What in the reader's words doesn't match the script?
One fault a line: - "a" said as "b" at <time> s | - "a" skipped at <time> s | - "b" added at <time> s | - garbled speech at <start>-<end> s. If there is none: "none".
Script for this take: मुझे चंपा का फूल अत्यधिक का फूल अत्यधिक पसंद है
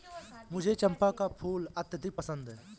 - "का फूल अत्यधिक" skipped at 2.2 s